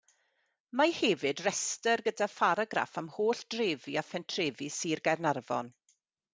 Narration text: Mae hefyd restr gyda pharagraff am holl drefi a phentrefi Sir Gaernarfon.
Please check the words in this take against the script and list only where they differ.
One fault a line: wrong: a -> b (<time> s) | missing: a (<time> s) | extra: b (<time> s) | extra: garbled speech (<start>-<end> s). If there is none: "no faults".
no faults